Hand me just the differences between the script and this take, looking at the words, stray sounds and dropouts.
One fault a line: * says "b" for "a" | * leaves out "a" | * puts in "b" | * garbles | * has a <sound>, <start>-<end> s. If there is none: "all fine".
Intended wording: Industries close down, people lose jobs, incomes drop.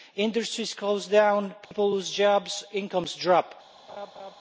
* has a dropout, 1.6-1.7 s
* has a laugh, 3.9-4.4 s